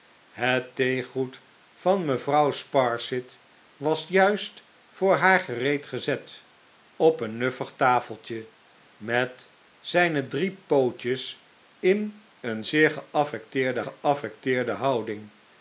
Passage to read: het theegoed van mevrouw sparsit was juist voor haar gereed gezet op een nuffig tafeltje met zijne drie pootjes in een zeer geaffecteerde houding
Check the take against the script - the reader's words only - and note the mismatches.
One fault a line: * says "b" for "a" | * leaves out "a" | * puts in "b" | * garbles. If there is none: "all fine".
* puts in "geaffecteerde"